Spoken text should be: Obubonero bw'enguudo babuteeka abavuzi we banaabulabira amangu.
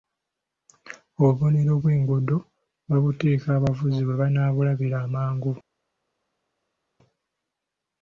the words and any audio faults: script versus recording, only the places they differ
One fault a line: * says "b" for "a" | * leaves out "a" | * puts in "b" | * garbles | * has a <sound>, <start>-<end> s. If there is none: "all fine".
all fine